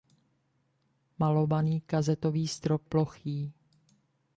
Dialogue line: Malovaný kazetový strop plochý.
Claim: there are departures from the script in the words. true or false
false